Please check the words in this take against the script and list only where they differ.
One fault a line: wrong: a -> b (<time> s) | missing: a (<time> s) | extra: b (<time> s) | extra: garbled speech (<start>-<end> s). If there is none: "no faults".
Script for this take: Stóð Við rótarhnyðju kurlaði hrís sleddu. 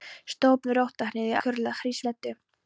no faults